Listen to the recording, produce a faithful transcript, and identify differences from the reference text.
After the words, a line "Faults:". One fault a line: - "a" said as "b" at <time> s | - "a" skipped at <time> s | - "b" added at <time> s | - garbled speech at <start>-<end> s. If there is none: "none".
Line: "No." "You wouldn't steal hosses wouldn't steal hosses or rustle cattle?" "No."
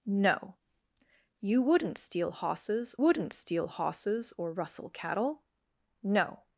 "No." "You wouldn't steal hosses wouldn't steal hosses or rustle cattle?" "No."
Faults:
none